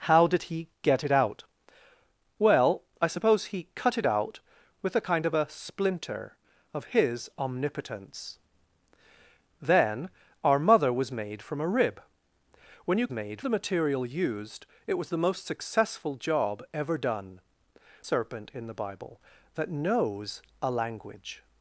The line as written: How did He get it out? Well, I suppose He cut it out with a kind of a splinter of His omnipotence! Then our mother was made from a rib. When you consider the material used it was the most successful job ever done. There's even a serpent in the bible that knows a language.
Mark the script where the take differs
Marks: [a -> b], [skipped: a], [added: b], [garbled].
How did He get it out? Well, I suppose He cut it out with a kind of a splinter of His omnipotence! Then our mother was made from a rib. When you [consider -> made] the material used it was the most successful job ever done. [skipped: There's even a] serpent in the bible that knows a language.